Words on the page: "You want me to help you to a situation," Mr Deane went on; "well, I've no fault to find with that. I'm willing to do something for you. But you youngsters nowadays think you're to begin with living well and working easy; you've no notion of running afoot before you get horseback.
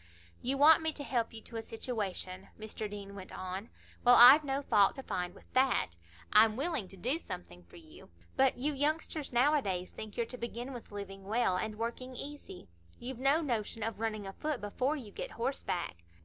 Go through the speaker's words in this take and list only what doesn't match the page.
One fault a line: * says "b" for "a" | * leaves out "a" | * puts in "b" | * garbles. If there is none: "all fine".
all fine